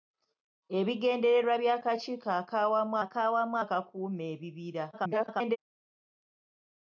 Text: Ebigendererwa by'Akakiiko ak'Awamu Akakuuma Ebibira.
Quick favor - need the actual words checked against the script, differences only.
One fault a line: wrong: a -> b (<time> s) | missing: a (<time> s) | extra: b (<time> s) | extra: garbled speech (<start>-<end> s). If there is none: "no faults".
extra: ak'Awamu (3.0 s)
extra: garbled speech (4.9-5.6 s)